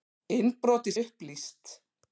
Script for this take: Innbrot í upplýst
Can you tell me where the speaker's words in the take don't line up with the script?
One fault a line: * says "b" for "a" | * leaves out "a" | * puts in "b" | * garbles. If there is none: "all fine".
all fine